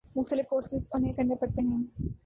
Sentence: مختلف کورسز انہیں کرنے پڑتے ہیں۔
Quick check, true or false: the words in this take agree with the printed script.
true